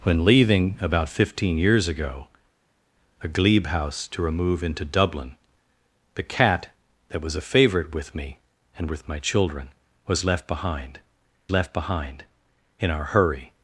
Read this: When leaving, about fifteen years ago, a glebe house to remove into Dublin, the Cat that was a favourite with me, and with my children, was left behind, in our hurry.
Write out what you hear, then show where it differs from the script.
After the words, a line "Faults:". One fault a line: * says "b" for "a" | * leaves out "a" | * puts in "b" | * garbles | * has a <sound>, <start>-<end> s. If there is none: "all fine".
When leaving, about fifteen years ago, a glebe house to remove into Dublin, the Cat that was a favourite with me, and with my children, was left behind left behind, in our hurry.
Faults:
* puts in "left behind"